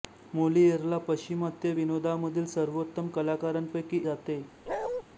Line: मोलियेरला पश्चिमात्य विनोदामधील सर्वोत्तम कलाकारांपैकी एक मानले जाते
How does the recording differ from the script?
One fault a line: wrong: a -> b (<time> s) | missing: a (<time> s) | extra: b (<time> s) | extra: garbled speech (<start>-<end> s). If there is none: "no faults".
missing: एक मानले (4.0 s)